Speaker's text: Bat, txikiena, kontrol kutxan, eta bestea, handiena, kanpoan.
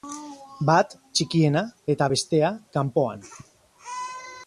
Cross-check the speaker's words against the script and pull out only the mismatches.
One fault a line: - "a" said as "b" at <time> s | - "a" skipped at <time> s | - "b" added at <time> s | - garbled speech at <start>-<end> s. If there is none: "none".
- "kontrol kutxan" skipped at 1.6 s
- "handiena" skipped at 2.5 s